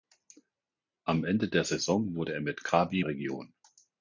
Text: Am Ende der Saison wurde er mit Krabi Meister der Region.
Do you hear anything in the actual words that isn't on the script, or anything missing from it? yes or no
yes